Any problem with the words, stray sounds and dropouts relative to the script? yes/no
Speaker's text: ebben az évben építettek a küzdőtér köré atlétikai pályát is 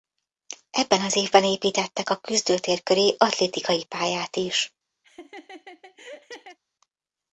yes